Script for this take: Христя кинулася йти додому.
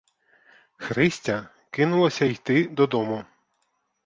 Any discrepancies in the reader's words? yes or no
no